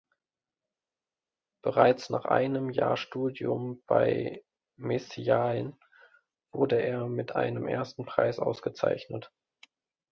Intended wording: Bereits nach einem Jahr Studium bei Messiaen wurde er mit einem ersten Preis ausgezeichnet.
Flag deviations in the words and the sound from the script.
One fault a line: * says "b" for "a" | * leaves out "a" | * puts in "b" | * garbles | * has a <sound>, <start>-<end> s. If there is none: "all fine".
all fine